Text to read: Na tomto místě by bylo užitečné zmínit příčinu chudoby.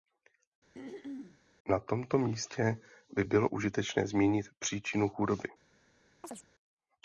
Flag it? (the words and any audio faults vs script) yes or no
yes